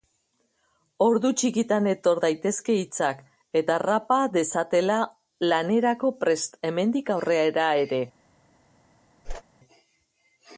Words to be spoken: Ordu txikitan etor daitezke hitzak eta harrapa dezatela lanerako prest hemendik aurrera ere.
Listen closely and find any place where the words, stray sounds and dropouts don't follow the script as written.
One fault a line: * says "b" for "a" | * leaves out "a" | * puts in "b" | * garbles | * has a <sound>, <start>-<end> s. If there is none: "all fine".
* has a whoosh, 9.2-9.4 s